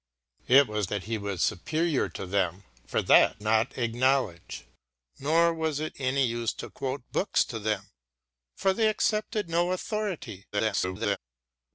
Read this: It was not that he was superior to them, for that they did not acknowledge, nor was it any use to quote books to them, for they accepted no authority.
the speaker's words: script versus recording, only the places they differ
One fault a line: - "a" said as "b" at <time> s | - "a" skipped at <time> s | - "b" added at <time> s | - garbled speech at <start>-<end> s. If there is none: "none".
- "not" skipped at 0.9 s
- "they did" skipped at 3.4 s
- garbled speech at 10.5-11.2 s